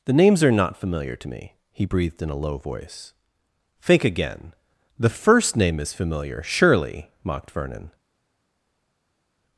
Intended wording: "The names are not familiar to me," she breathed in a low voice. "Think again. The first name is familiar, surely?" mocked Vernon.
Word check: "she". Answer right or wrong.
wrong